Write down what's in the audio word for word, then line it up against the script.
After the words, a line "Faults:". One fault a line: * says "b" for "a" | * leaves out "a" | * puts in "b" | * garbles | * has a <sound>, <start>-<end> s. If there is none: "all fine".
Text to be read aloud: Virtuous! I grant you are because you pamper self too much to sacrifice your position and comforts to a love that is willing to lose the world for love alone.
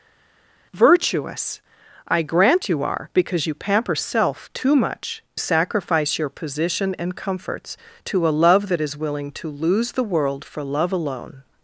Virtuous! I grant you are because you pamper self too much sacrifice your position and comforts to a love that is willing to lose the world for love alone.
Faults:
* leaves out "to"